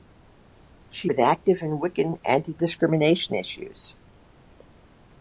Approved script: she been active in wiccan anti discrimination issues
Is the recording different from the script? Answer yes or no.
no